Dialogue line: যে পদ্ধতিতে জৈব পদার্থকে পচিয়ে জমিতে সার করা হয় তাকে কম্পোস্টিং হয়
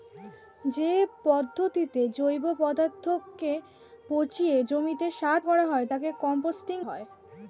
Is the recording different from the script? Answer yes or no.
no